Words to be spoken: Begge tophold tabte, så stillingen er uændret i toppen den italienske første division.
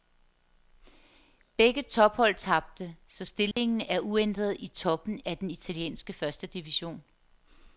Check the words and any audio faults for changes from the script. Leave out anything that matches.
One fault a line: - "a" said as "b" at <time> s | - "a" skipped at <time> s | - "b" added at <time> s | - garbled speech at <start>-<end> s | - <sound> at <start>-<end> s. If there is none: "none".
- dropout at 3.5-3.6 s
- "af" added at 5.2 s